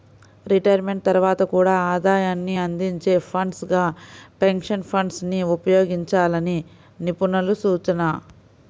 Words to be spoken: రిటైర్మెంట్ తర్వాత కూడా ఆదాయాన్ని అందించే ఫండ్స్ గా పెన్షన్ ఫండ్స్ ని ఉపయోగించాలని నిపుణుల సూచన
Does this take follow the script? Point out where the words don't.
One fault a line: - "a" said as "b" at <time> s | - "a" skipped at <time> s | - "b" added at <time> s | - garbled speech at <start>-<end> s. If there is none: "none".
none